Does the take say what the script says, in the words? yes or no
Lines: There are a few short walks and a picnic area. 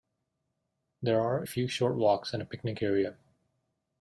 no